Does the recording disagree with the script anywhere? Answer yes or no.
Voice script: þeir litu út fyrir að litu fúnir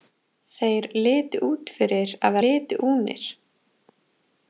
no